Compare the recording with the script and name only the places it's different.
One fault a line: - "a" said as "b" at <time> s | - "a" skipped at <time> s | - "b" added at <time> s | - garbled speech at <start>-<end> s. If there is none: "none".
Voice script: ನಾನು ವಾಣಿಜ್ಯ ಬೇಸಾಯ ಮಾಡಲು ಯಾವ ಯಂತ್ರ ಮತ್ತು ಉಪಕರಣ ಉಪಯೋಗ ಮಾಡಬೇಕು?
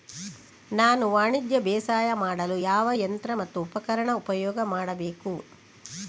none